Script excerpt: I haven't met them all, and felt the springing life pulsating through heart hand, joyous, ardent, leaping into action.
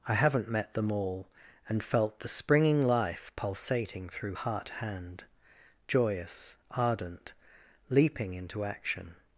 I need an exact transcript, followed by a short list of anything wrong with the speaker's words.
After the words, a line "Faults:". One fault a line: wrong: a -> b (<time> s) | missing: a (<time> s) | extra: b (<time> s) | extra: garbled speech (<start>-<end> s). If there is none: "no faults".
I haven't met them all, and felt the springing life pulsating through heart hand, joyous, ardent, leaping into action.
Faults:
no faults